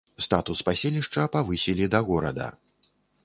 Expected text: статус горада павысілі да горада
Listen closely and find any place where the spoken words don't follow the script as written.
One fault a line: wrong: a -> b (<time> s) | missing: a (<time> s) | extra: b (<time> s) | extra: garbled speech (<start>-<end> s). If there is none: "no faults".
wrong: горада -> паселішча (0.7 s)